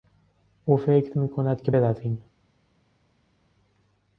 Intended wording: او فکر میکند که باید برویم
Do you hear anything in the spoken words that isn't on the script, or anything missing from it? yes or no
yes